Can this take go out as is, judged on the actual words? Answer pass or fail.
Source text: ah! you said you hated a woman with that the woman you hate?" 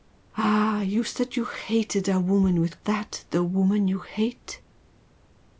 pass